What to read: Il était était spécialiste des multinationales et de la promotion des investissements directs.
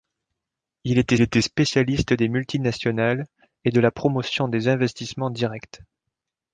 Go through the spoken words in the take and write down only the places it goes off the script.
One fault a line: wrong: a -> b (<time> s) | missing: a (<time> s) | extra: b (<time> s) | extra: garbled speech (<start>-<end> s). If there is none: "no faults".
no faults